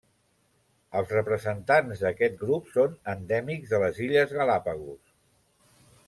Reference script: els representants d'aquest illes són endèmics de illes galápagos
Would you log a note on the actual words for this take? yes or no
yes